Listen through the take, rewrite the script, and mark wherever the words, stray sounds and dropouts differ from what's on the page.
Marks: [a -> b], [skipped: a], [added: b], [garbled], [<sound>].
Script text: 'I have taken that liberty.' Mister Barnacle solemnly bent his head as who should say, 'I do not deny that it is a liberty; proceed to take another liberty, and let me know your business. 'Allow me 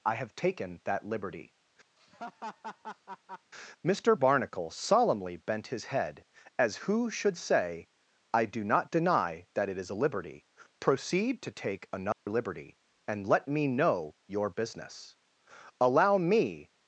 'I have taken that liberty.' [laugh] Mister Barnacle solemnly bent his head as who should say, 'I do not deny that it is a liberty; proceed to take another [dropout] liberty, and let me know your business. 'Allow me